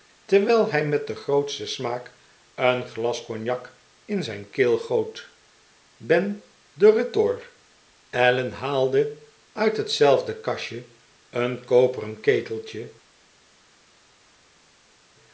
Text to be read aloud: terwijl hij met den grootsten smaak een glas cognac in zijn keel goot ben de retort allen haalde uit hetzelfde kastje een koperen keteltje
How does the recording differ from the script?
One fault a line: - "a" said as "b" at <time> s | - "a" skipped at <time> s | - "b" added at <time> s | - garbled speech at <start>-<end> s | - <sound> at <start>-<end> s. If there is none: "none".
none